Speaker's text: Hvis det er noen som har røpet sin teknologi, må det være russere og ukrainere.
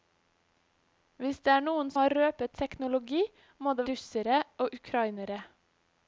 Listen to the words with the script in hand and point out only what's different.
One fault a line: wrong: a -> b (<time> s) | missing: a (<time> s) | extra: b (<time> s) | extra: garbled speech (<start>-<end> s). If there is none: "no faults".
missing: som (1.9 s)
missing: sin (2.6 s)
missing: være (3.9 s)